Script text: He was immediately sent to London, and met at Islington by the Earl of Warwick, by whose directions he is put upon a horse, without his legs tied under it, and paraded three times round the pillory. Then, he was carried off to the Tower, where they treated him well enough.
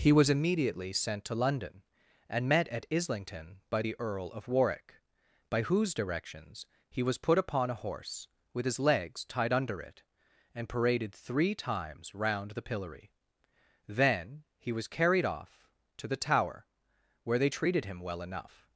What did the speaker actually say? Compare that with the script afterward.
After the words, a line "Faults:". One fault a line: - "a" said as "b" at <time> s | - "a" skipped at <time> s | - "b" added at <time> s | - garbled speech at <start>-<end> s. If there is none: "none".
He was immediately sent to London, and met at Islington by the Earl of Warwick, by whose directions he was put upon a horse, with his legs tied under it, and paraded three times round the pillory. Then, he was carried off to the Tower, where they treated him well enough.
Faults:
- "is" said as "was" at 7.0 s
- "without" said as "with" at 8.5 s